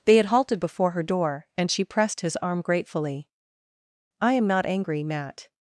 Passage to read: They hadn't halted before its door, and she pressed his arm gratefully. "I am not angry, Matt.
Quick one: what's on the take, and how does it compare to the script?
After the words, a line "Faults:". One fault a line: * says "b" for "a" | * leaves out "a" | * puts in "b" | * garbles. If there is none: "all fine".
They had halted before her door, and she pressed his arm gratefully. "I am not angry, Matt.
Faults:
* says "had" for "hadn't"
* says "her" for "its"